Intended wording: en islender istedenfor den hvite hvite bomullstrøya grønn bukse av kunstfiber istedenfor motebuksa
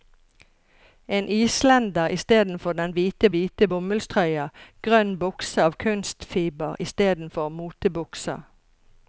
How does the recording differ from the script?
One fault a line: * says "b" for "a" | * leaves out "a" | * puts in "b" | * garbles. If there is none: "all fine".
all fine